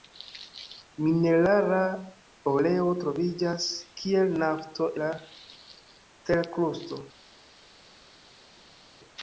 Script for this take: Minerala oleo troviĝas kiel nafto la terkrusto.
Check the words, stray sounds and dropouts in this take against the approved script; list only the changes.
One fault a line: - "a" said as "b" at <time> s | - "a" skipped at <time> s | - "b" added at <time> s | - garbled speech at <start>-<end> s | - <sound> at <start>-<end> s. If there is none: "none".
none